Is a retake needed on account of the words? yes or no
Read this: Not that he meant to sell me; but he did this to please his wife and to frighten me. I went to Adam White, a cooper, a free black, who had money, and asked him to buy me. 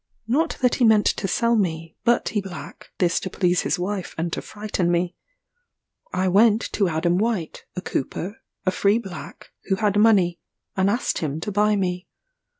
yes